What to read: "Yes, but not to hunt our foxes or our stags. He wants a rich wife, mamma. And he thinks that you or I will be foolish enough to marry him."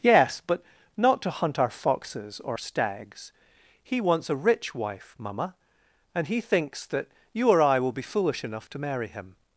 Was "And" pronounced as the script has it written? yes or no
yes